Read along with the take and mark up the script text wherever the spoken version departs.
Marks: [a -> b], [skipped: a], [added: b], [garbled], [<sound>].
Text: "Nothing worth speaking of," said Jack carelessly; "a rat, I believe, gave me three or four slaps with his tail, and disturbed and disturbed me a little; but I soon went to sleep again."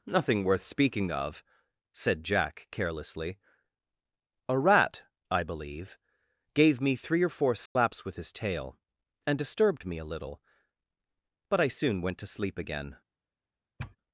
"Nothing worth speaking of," said Jack carelessly; "a rat, I believe, gave me three or four slaps [dropout] with his tail, and disturbed [skipped: and disturbed] me a little; but I soon went to sleep again." [sniff]